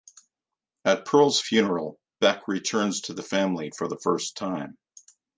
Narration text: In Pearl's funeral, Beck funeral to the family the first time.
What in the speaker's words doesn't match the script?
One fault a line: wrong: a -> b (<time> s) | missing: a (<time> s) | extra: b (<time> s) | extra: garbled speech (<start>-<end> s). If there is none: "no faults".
wrong: In -> At (0.8 s)
wrong: funeral -> returns (2.5 s)
extra: for (3.7 s)